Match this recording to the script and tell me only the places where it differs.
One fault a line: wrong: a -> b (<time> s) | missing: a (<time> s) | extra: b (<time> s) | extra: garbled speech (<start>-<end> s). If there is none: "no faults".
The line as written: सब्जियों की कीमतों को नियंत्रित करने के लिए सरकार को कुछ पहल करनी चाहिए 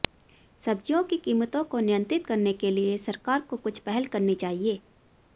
no faults